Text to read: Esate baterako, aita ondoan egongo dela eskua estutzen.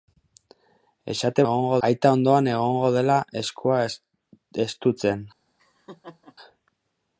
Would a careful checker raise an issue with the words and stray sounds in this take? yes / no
yes